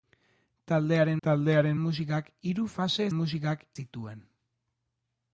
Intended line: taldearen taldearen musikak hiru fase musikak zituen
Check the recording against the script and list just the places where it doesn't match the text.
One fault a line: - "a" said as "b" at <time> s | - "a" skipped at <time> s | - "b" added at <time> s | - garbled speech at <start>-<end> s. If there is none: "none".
none